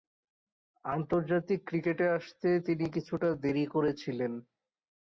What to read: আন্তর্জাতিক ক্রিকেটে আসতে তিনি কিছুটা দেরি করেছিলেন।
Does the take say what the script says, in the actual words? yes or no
yes